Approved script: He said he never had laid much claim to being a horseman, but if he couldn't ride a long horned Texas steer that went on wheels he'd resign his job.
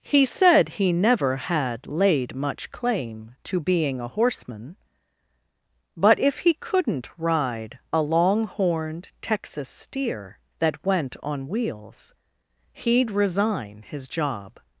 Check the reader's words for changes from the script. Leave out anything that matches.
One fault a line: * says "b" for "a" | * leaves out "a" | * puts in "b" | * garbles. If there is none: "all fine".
all fine